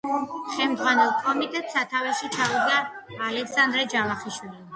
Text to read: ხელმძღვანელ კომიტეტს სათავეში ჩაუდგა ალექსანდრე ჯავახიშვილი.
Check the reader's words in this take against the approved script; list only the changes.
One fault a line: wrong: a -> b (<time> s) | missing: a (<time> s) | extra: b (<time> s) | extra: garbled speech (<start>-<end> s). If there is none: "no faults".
no faults